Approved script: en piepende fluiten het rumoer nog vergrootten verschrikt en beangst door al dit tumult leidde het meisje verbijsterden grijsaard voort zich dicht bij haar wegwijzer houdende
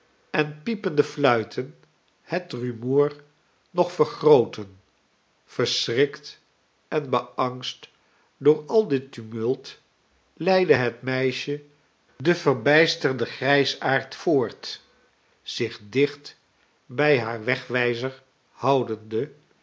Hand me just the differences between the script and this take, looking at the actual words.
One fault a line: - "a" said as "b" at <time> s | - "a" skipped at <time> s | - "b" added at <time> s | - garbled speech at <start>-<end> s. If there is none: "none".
- "den" added at 12.2 s